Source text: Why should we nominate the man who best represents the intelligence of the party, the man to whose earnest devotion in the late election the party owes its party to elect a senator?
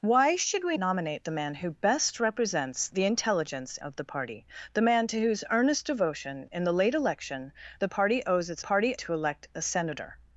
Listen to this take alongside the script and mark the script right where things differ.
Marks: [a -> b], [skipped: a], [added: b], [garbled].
Why should we nominate the man who best represents the intelligence of the party, the man to whose earnest devotion in the late election the party owes its party to elect a senator?